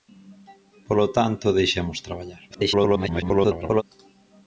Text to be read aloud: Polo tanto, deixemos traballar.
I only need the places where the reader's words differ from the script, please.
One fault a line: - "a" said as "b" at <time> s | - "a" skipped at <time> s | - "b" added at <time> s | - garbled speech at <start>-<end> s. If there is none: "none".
- garbled speech at 2.5-3.8 s